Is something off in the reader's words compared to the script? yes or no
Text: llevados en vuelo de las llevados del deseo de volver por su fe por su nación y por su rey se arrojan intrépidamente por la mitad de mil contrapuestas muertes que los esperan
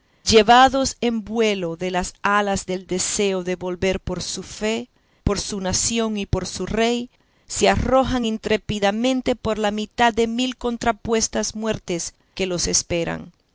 yes